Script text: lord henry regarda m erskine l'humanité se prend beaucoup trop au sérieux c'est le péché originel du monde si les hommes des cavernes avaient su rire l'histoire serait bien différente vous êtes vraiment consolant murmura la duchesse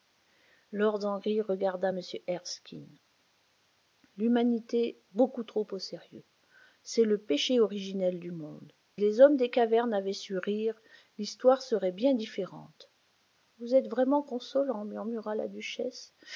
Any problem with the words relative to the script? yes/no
yes